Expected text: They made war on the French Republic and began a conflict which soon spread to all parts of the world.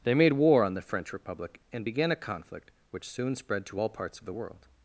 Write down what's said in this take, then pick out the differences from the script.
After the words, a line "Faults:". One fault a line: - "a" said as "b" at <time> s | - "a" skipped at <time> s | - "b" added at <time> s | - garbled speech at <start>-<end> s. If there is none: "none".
They made war on the French Republic and began a conflict which soon spread to all parts of the world.
Faults:
none